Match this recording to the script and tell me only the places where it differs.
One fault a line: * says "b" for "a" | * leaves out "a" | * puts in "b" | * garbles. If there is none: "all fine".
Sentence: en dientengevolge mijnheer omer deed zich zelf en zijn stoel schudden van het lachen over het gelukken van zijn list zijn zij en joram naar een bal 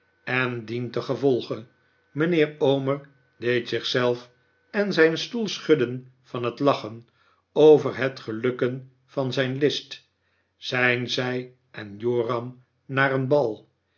all fine